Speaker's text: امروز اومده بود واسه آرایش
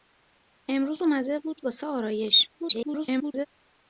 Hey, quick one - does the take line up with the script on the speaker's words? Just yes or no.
no